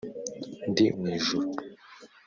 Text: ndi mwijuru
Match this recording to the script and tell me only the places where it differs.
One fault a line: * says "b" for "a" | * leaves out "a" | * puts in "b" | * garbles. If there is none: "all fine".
all fine